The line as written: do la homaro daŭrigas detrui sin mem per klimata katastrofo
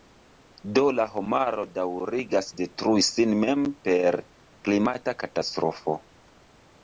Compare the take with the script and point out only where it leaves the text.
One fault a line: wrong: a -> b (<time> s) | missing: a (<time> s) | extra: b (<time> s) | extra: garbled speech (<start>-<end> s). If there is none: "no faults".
no faults